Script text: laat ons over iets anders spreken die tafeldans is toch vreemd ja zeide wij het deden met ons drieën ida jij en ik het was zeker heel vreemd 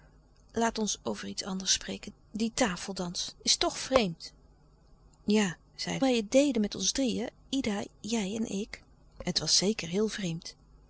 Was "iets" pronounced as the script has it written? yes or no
yes